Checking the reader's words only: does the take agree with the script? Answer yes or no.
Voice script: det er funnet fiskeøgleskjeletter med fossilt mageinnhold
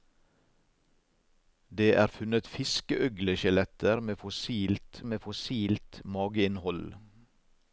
no